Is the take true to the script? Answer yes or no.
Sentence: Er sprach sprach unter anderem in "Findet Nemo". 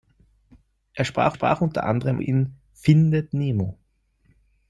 yes